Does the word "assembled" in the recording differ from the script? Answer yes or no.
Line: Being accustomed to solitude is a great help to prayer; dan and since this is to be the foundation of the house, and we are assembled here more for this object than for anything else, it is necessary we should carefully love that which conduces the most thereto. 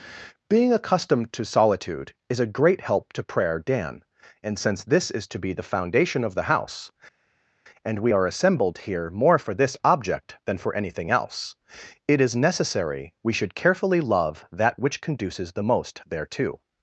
no